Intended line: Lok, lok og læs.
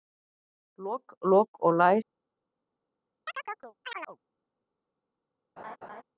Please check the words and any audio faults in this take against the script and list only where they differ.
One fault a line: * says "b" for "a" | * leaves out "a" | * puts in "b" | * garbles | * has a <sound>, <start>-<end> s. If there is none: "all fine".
* has a chirp, 3.3-4.2 s
* has a laugh, 5.6-6.0 s